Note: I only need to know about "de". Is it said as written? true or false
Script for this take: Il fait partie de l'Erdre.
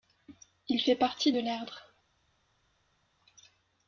true